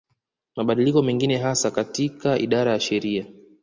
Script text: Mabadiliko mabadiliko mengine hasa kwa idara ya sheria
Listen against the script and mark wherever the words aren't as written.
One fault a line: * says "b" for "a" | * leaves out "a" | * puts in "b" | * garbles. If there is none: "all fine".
* leaves out "mabadiliko"
* says "katika" for "kwa"